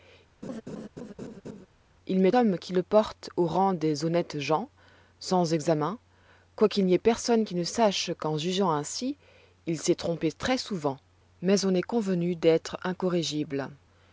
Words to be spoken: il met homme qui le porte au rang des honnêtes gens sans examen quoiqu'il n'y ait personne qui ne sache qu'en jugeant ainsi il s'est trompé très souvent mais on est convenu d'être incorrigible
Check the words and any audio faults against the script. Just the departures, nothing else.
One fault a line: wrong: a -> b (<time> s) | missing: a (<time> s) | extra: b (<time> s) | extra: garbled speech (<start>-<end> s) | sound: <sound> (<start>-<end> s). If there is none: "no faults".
sound: laugh (0.4-1.7 s)